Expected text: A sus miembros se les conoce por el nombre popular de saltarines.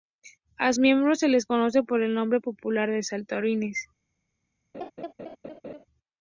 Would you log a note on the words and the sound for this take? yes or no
yes